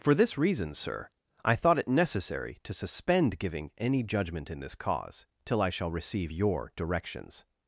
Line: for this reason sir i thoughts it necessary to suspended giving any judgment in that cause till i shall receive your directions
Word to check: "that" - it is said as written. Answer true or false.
false